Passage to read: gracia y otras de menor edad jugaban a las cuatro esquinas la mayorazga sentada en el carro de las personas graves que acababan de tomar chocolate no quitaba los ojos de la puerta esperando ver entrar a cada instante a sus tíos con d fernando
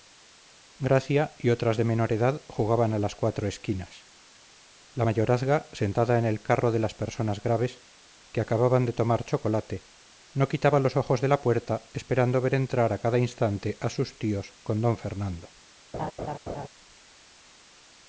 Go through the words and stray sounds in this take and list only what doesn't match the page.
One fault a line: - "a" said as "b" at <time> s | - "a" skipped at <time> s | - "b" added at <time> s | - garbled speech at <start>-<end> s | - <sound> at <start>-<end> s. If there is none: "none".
- laugh at 15.9-16.7 s